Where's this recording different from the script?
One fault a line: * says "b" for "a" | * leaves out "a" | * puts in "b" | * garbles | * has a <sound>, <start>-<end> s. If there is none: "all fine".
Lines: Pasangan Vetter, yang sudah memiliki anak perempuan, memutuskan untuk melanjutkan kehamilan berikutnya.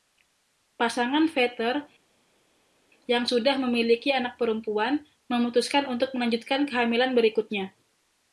all fine